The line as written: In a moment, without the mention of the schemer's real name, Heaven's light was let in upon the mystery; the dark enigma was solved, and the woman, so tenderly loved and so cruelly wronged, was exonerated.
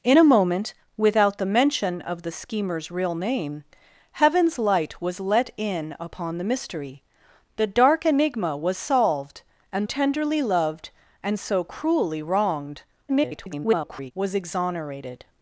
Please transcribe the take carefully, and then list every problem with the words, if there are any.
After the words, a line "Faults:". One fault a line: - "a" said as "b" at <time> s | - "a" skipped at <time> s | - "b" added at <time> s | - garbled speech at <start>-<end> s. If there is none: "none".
In a moment, without the mention of the schemer's real name, Heaven's light was let in upon the mystery; the dark enigma was solved, and tenderly loved and so cruelly wronged, [garbled] was exonerated.
Faults:
- "the woman so" skipped at 9.8 s
- garbled speech at 13.1-14.1 s